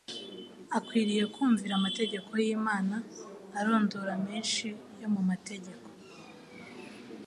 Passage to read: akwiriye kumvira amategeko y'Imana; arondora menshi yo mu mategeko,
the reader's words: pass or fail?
pass